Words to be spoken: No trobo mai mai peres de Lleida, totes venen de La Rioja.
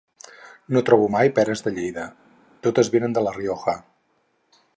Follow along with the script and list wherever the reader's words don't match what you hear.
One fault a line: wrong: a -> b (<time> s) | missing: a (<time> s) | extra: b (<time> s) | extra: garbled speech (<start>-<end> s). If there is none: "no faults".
missing: mai (1.3 s)